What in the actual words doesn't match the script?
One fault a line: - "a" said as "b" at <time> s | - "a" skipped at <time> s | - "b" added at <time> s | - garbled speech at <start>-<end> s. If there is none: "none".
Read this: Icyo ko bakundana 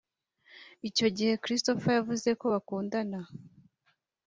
- "gihe Christopher yavuze" added at 1.1 s